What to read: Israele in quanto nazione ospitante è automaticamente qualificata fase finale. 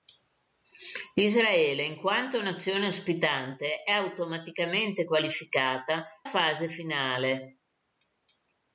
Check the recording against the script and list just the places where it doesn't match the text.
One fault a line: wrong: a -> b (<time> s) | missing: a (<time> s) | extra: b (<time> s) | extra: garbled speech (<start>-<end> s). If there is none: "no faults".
no faults